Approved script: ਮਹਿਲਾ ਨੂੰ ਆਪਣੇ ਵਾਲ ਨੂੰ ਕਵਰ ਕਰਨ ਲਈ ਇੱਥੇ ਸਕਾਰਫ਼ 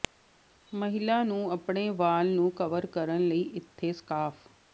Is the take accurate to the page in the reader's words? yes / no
yes